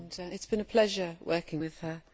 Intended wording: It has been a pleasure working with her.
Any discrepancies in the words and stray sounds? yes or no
no